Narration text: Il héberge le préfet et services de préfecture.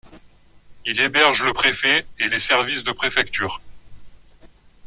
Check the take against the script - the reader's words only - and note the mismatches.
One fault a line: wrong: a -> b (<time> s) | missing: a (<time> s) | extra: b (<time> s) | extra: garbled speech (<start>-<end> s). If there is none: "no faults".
extra: les (2.3 s)